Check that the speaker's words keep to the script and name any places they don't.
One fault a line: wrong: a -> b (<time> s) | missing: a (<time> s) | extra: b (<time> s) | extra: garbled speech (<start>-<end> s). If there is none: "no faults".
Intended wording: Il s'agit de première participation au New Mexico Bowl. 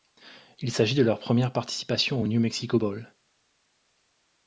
extra: leur (1.0 s)